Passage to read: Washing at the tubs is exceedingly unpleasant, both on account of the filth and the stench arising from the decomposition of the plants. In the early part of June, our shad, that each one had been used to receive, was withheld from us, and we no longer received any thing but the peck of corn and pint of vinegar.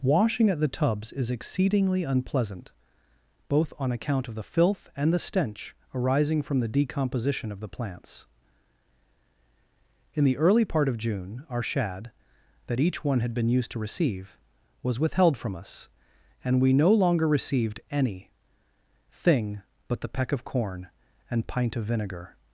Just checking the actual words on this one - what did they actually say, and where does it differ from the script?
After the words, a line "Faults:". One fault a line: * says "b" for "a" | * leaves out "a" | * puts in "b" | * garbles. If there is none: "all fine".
Washing at the tubs is exceedingly unpleasant, both on account of the filth and the stench arising from the decomposition of the plants. In the early part of June, our shad, that each one had been used to receive, was withheld from us, and we no longer received any thing but the peck of corn and pint of vinegar.
Faults:
all fine